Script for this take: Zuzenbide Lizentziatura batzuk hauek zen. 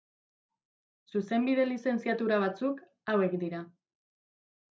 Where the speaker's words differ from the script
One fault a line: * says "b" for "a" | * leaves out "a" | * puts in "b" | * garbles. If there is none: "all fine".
* says "dira" for "zen"